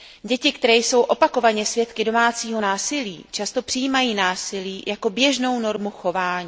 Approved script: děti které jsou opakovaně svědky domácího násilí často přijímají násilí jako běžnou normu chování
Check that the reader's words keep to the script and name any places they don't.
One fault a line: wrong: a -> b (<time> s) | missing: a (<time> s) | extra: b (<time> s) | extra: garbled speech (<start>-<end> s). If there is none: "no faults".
no faults